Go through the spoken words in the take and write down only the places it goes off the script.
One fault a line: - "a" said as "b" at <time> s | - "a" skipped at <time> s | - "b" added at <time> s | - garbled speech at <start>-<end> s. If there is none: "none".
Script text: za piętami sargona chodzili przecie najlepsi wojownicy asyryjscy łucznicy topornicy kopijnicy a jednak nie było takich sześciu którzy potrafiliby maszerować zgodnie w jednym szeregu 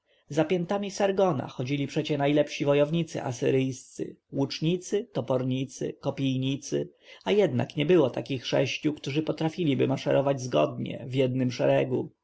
none